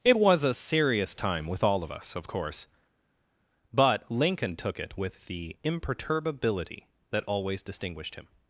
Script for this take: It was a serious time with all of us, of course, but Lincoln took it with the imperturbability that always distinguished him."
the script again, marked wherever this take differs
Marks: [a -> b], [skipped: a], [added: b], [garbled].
It was a serious time with all of us, of course, but Lincoln took it with the imperturbability that always distinguished him."